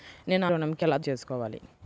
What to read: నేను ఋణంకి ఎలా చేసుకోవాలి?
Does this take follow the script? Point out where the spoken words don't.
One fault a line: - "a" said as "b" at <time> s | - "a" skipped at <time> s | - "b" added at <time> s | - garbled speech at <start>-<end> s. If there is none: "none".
none